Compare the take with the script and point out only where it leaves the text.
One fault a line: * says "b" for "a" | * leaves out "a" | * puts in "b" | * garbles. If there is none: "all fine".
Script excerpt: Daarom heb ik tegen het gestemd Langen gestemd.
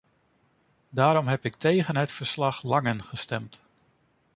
* says "verslag" for "gestemd"